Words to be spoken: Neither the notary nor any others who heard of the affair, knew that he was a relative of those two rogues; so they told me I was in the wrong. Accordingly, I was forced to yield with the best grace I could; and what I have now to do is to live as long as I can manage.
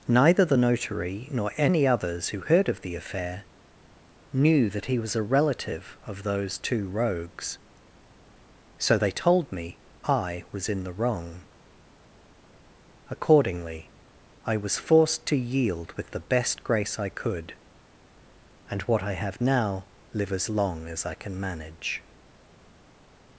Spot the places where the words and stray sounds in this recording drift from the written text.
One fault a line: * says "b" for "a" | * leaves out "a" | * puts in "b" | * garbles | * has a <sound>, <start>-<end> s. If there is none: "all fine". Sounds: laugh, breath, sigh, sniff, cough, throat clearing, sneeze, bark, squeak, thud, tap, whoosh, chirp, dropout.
* leaves out "to do is to"